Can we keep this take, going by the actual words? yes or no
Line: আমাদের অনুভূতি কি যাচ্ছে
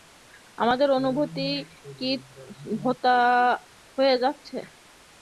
no